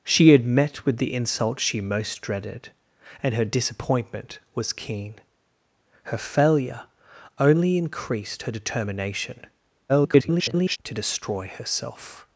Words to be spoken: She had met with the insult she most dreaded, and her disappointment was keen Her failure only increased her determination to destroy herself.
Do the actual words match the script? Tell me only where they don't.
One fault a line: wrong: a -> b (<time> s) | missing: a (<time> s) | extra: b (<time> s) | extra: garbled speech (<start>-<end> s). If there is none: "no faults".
extra: garbled speech (9.9-10.8 s)